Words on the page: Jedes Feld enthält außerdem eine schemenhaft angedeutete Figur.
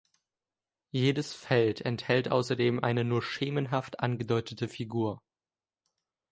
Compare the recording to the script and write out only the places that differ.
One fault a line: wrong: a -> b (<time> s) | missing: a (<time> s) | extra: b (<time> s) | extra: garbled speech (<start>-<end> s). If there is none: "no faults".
extra: nur (3.0 s)